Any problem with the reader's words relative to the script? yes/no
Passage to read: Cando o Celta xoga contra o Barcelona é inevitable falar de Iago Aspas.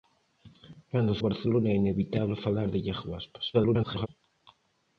yes